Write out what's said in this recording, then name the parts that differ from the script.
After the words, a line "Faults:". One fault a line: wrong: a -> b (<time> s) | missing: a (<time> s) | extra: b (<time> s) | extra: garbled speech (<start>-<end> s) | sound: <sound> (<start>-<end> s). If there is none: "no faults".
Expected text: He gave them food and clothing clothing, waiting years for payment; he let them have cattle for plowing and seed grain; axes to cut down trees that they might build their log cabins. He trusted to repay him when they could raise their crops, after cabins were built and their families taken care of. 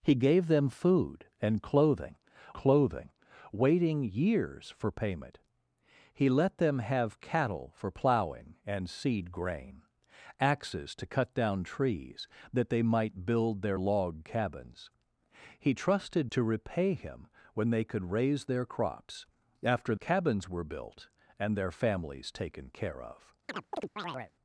He gave them food and clothing clothing, waiting years for payment; he let them have cattle for plowing and seed grain; axes to cut down trees that they might build their log cabins. He trusted to repay him when they could raise their crops, after cabins were built and their families taken care of.
Faults:
sound: chirp (23.5-24.3 s)